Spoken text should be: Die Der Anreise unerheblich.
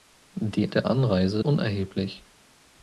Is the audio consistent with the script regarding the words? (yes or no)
yes